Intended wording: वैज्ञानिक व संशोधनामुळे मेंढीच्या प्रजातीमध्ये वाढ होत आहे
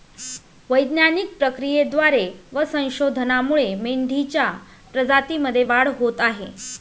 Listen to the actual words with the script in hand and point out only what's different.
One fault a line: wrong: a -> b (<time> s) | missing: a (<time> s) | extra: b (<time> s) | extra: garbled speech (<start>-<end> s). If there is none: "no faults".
extra: प्रक्रियेद्वारे (1.4 s)